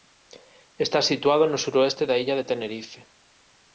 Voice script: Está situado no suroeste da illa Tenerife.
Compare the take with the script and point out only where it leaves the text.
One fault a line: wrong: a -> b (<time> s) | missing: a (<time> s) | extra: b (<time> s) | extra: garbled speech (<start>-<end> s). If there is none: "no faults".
extra: de (2.4 s)